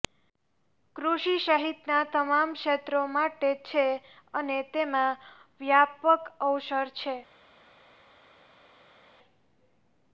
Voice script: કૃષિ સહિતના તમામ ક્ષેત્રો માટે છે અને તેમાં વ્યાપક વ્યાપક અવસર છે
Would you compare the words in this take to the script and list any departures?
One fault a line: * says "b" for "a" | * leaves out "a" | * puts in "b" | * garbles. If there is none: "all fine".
* leaves out "વ્યાપક"